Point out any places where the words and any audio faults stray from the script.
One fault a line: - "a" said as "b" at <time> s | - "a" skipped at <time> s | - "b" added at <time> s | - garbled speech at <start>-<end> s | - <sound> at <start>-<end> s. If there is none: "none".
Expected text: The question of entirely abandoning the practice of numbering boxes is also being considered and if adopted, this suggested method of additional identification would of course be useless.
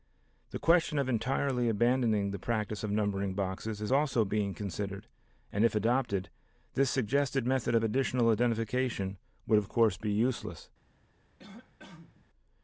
- cough at 11.4-12.2 s